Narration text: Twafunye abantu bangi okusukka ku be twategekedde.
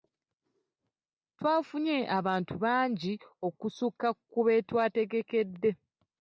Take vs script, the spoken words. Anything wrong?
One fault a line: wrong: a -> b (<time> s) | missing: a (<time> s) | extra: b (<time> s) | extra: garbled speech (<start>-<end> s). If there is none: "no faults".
no faults